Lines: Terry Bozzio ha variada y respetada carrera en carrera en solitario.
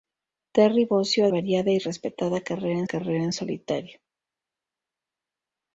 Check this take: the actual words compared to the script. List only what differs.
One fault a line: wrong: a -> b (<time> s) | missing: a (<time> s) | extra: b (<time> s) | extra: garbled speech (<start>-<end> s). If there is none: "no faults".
no faults